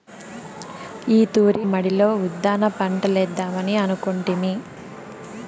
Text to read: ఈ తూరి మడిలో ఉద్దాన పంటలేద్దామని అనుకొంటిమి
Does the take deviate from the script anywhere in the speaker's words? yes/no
no